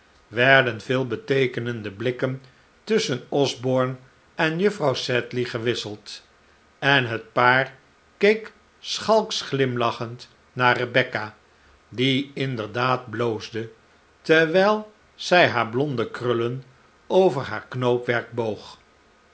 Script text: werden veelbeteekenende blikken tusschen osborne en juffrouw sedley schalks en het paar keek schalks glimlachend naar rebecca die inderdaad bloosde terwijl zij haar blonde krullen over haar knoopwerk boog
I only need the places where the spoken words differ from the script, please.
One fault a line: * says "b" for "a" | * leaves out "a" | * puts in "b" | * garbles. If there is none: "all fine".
* says "gewisseld" for "schalks"